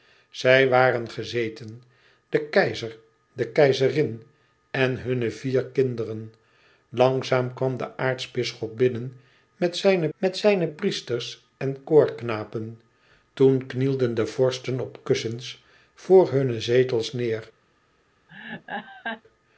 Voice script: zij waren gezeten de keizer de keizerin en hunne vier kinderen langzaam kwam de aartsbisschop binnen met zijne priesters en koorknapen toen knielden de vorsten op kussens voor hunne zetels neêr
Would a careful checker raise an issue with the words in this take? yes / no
yes